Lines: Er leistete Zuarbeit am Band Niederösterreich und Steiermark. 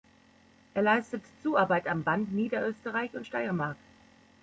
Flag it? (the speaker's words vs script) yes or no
no